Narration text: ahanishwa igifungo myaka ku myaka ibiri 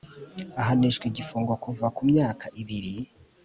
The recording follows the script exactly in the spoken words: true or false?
false